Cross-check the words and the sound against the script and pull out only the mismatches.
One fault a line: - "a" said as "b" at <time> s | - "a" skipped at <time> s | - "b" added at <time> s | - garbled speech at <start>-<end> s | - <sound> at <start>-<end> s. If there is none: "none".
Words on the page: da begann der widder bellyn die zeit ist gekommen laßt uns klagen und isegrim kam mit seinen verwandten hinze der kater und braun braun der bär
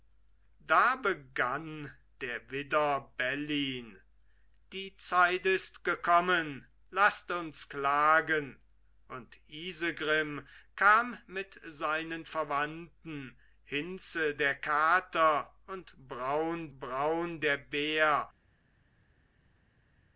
none